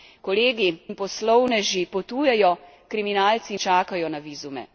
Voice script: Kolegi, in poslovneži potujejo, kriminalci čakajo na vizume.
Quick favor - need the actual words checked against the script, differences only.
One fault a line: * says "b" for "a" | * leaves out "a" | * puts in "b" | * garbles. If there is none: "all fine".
all fine